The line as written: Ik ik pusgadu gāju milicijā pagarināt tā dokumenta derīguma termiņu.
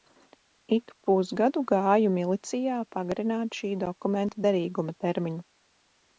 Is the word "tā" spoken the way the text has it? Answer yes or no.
no